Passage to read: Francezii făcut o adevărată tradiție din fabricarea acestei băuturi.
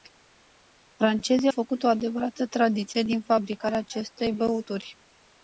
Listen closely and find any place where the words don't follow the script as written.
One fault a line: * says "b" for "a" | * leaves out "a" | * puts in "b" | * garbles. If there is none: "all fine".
all fine